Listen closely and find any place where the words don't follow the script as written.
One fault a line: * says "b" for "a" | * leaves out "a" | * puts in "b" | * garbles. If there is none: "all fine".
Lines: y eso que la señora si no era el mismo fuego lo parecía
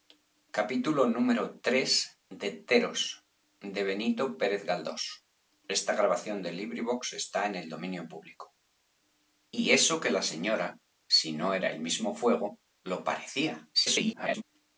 * garbles